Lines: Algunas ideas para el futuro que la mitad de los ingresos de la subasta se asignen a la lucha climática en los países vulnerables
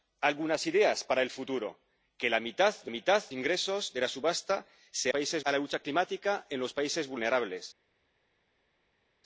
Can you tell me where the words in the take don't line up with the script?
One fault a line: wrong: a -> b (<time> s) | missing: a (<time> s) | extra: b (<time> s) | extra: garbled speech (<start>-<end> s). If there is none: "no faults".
wrong: los -> mitad (2.9 s)
wrong: asignen -> países (5.1 s)